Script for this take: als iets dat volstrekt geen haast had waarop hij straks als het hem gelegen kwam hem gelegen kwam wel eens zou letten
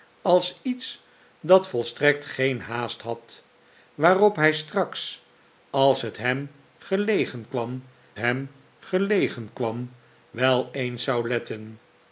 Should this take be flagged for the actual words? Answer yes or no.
no